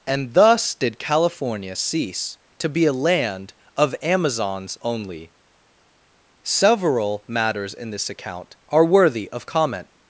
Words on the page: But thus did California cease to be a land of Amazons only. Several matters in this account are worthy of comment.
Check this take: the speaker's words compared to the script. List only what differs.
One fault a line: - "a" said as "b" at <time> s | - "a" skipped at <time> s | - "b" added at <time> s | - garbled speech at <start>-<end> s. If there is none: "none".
- "But" said as "And" at 0.1 s